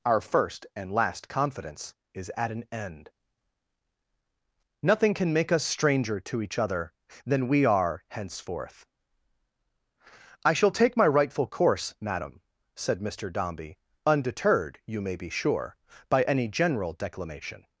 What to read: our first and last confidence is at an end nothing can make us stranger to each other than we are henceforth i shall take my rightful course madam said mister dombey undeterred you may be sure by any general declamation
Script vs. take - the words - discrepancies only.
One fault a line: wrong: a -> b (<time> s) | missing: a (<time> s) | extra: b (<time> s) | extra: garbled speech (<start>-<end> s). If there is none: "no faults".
no faults